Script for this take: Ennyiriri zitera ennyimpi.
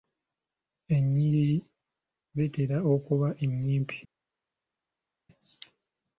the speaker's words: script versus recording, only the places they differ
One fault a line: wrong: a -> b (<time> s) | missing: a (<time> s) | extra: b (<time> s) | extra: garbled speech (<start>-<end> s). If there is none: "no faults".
extra: okuba (2.9 s)